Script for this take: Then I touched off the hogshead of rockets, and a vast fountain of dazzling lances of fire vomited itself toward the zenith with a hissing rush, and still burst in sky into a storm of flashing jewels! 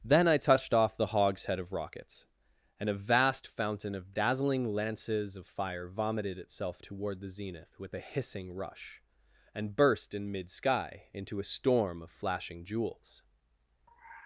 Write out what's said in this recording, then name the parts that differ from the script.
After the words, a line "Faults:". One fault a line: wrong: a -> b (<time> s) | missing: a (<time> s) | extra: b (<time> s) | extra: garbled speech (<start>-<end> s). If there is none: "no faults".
Then I touched off the hogshead of rockets, and a vast fountain of dazzling lances of fire vomited itself toward the zenith with a hissing rush, and burst in mid sky into a storm of flashing jewels!
Faults:
missing: still (9.7 s)
extra: mid (10.3 s)